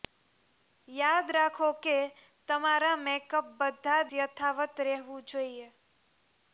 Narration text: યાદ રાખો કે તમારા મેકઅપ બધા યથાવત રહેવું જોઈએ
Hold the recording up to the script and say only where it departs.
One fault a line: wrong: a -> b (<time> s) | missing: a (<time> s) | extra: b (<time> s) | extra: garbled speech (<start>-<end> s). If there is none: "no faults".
no faults